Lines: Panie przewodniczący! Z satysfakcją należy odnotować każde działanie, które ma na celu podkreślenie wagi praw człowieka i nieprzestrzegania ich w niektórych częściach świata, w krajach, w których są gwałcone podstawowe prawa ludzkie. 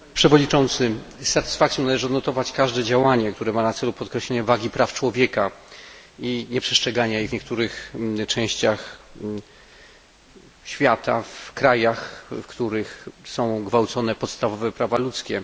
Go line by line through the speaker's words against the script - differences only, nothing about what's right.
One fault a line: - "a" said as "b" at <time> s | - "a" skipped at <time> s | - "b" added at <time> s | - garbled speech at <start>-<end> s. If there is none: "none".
none